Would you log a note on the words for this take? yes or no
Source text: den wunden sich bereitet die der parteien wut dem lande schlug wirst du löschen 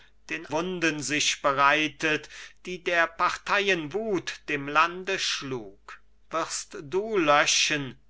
no